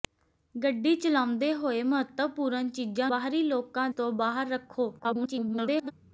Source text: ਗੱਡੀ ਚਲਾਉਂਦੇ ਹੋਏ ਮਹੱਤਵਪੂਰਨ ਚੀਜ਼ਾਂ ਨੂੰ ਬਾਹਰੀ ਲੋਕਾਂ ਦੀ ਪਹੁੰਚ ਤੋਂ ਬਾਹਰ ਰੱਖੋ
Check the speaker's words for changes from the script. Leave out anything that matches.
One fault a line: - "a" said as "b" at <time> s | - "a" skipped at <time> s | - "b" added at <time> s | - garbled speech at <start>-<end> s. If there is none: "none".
- "ਨੂੰ" skipped at 3.1 s
- "ਦੀ ਪਹੁੰਚ" skipped at 3.9 s
- garbled speech at 5.0-5.9 s